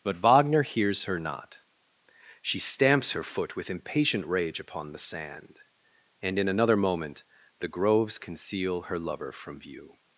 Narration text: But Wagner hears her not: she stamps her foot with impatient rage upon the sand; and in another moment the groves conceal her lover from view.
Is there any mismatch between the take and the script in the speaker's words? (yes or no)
no